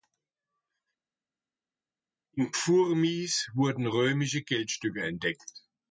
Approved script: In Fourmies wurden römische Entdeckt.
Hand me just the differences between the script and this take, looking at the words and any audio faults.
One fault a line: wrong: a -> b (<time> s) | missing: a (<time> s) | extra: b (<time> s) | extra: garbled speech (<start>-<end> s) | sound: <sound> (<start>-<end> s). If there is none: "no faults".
extra: Geldstücke (4.4 s)